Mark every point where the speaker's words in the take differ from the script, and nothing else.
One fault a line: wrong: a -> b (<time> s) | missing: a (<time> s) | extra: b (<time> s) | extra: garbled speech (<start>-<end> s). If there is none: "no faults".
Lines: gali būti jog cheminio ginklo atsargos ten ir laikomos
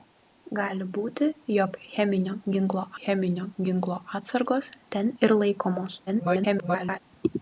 extra: cheminio ginklo (3.0 s)
extra: garbled speech (6.1-7.0 s)